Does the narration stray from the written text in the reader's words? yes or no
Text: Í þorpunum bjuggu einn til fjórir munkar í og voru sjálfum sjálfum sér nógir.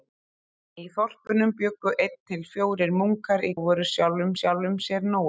no